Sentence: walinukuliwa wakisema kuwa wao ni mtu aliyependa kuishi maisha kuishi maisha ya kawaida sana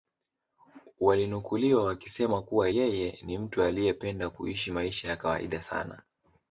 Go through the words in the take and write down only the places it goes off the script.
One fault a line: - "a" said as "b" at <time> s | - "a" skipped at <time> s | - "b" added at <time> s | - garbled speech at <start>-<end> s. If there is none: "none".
- "wao" said as "yeye" at 2.7 s
- "kuishi maisha" skipped at 5.1 s